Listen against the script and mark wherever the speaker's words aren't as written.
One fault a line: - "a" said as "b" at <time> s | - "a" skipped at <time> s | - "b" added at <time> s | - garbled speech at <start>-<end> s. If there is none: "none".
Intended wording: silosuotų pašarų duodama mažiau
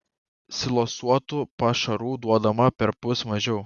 - "perpus" added at 2.8 s